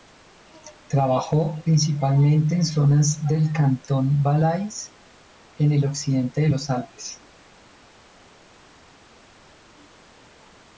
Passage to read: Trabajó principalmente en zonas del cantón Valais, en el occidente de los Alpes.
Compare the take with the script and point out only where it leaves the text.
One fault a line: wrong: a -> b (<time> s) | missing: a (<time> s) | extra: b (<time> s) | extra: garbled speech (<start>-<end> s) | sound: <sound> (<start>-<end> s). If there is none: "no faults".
no faults